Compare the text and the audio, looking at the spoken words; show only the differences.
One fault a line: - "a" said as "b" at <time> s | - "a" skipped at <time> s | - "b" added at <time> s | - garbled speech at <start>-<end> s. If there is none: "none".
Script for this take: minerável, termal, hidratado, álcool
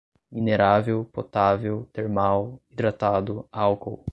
- "potável" added at 1.1 s